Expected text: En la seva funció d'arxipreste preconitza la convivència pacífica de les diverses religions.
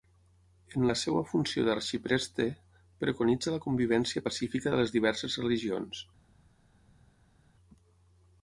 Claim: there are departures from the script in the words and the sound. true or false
false